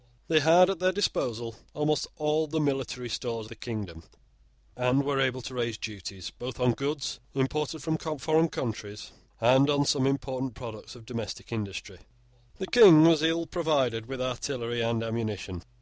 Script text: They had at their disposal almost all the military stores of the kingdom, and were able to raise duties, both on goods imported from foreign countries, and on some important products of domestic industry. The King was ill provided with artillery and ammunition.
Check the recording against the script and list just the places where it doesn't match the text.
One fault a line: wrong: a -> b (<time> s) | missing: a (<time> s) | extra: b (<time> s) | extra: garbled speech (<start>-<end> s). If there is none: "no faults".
missing: of (3.5 s)